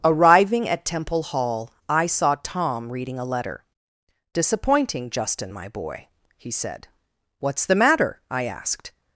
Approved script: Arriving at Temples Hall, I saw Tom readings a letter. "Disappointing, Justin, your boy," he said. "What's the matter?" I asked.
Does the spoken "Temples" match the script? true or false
false